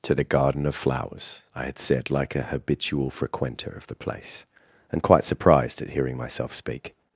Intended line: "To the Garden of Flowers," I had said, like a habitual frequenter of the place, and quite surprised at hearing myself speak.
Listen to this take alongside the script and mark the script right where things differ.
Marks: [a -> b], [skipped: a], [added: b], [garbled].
"To the Garden of Flowers," I had said, like a habitual frequenter of the place, and quite surprised at hearing myself speak.